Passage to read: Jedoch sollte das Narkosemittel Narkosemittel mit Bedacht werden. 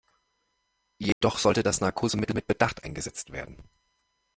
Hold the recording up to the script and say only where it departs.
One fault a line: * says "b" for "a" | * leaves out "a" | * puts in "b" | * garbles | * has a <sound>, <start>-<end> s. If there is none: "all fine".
* has a dropout, 1.1-1.2 s
* leaves out "Narkosemittel"
* puts in "eingesetzt"